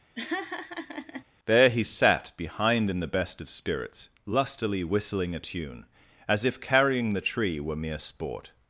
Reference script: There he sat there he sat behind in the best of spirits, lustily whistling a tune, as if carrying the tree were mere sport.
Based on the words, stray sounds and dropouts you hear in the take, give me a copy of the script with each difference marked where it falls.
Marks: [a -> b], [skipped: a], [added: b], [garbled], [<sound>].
[laugh] There he sat [skipped: there he sat] behind in the best of spirits, lustily whistling a tune, as if carrying the tree were mere sport.